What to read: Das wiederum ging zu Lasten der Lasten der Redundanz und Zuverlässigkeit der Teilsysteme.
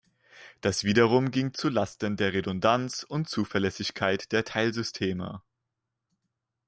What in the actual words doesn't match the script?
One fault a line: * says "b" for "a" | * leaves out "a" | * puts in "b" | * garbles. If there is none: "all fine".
* leaves out "Lasten der"